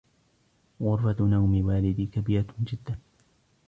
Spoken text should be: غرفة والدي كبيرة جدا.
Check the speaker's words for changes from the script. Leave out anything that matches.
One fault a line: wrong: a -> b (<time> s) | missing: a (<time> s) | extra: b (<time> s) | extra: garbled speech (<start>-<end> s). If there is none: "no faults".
extra: نوم (1.2 s)